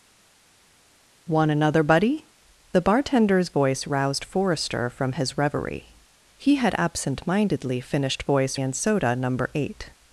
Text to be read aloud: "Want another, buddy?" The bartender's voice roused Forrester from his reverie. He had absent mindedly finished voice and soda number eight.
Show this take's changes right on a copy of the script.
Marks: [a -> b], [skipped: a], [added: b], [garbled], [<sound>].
"Want another, buddy?" The bartender's voice roused Forrester from his reverie. He had absent mindedly finished voice and soda number eight.